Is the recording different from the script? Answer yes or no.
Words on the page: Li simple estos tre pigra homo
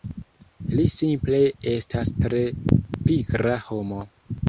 yes